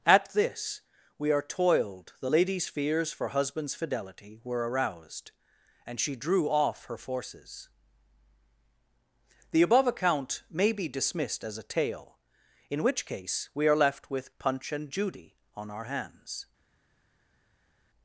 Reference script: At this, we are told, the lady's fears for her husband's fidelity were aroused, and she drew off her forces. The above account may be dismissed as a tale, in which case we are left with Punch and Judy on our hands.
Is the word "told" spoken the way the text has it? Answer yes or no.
no